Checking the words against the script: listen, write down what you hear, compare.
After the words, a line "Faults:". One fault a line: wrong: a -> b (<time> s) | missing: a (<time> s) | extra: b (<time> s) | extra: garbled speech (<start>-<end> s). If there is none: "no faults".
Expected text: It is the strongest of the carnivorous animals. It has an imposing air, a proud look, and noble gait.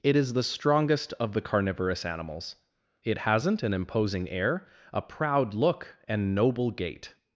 It is the strongest of the carnivorous animals. It hasn't an imposing air, a proud look, and noble gait.
Faults:
wrong: has -> hasn't (3.2 s)